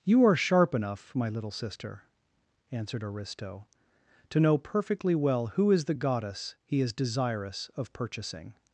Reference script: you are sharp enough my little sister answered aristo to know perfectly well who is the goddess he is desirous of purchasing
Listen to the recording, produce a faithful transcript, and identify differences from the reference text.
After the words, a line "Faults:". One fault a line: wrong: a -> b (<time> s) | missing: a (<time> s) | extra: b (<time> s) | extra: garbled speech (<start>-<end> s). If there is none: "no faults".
you are sharp enough my little sister answered aristo to know perfectly well who is the goddess he is desirous of purchasing
Faults:
no faults